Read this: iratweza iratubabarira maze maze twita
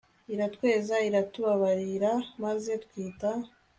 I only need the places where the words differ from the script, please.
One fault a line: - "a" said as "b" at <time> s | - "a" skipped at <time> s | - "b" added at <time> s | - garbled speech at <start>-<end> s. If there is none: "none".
- "maze" skipped at 2.7 s